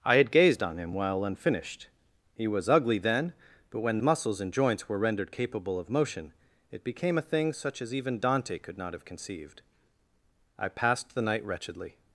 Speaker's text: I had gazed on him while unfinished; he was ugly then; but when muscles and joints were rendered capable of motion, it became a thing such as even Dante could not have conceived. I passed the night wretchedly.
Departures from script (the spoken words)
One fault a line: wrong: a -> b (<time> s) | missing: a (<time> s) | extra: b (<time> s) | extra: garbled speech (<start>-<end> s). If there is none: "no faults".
no faults